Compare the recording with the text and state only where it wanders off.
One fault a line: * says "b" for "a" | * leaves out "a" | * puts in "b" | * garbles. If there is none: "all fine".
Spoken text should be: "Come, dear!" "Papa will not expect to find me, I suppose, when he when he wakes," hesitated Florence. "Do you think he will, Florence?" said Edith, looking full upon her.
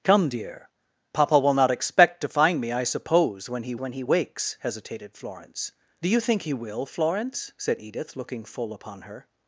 all fine